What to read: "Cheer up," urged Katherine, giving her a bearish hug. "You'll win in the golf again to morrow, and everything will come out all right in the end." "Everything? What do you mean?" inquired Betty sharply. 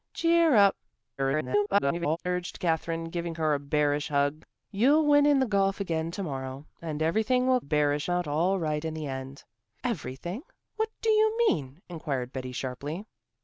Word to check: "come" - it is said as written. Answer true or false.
false